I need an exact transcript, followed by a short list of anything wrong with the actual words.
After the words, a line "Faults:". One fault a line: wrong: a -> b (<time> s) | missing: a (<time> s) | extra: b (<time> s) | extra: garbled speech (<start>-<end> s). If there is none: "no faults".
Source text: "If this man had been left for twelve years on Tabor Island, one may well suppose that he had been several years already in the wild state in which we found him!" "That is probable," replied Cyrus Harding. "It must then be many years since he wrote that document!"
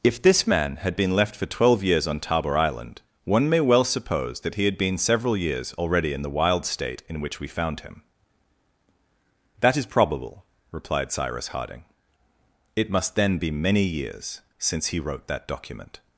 "If this man had been left for twelve years on Tabor Island, one may well suppose that he had been several years already in the wild state in which we found him!" "That is probable," replied Cyrus Harding. "It must then be many years since he wrote that document!"
Faults:
no faults